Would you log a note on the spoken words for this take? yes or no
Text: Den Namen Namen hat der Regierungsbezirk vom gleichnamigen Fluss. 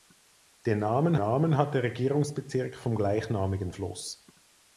no